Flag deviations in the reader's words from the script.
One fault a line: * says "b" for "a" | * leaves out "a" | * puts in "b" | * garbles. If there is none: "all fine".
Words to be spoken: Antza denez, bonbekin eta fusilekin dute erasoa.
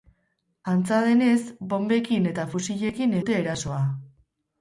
all fine